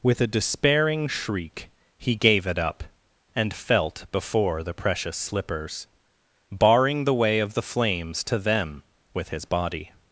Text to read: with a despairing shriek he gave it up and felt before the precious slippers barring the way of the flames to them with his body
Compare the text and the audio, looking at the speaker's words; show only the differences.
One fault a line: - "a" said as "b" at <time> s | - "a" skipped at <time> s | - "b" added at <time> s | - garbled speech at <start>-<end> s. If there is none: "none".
none